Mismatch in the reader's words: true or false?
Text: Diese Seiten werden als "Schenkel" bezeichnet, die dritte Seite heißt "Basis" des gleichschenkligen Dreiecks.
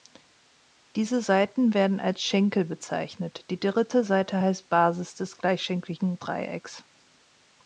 false